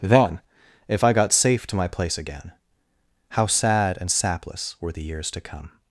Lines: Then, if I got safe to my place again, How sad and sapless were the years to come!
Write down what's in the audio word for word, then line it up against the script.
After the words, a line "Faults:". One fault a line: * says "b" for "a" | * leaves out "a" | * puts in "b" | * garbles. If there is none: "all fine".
Then, if I got safe to my place again, How sad and sapless were the years to come!
Faults:
all fine